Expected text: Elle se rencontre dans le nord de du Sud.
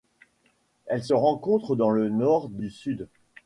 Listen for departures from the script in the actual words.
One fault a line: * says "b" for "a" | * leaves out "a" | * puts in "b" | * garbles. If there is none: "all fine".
all fine